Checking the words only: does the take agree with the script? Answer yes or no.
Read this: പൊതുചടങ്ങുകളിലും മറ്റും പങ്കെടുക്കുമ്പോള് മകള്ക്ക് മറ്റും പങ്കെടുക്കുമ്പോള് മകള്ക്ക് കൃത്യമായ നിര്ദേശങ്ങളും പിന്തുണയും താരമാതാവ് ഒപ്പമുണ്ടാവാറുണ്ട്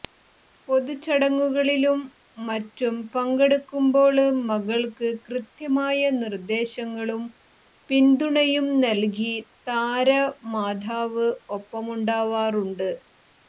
no